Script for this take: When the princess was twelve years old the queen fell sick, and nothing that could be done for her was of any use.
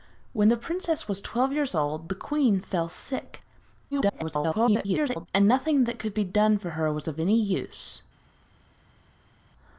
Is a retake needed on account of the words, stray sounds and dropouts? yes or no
yes